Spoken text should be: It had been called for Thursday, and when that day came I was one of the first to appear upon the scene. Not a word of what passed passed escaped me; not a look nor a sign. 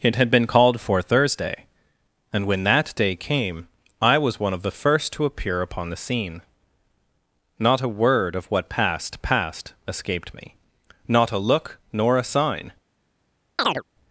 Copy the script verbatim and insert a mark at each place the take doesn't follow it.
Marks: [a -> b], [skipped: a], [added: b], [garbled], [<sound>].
It had been called for Thursday, and when that day came I was one of the first to appear upon the scene. Not a word of what passed passed escaped me; not a look nor a sign. [chirp]